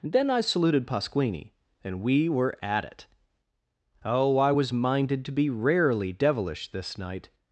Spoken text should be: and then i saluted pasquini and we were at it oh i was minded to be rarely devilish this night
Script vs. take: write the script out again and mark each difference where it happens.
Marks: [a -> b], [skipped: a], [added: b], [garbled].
[skipped: and] then i saluted pasquini and we were at it oh i was minded to be rarely devilish this night